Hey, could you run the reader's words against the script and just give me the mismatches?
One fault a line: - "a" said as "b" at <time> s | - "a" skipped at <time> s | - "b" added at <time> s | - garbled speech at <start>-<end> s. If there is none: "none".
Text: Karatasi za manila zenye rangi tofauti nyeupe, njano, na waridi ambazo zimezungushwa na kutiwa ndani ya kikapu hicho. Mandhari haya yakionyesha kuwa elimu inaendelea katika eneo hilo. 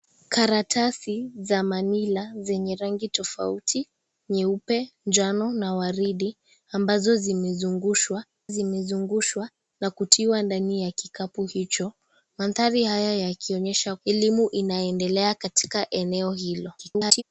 - "zimezungushwa" added at 8.5 s
- "kuwa" skipped at 14.0 s
- garbled speech at 16.8-17.2 s